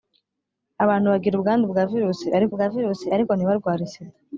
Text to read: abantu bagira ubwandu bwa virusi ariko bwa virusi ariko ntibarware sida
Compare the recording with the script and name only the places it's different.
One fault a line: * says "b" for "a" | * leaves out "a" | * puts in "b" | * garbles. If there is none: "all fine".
all fine